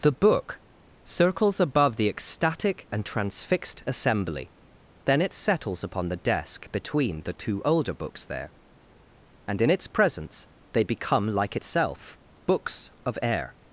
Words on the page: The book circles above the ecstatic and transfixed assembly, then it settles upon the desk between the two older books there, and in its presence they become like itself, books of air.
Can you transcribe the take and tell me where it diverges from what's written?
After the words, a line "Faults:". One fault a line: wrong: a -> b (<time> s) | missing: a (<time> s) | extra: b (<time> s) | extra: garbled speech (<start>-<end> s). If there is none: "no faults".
The book circles above the ecstatic and transfixed assembly, then it settles upon the desk between the two older books there, and in its presence they become like itself, books of air.
Faults:
no faults